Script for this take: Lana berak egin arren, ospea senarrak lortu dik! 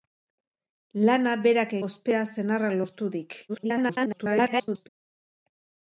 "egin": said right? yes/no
no